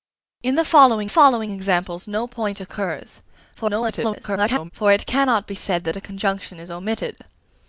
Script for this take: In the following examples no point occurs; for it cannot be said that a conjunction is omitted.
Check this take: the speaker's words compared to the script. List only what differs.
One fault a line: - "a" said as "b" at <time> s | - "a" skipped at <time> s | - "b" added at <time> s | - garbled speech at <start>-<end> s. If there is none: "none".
- "following" added at 1.1 s
- garbled speech at 3.5-4.7 s